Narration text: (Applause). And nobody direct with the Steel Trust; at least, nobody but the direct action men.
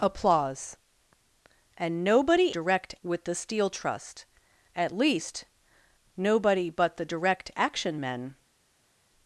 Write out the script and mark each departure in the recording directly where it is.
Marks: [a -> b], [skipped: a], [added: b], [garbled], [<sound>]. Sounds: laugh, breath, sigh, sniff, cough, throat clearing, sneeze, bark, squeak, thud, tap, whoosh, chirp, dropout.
(Applause). And nobody direct with the Steel Trust; at least, nobody but the direct action men.